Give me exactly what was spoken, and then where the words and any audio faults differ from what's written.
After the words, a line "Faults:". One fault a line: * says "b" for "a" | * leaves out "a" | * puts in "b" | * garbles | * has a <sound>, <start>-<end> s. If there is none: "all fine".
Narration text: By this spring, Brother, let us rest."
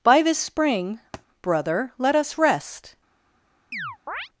By this spring, Brother, let us rest."
Faults:
* has a thud, 1.1-1.3 s
* has a chirp, 3.7-4.3 s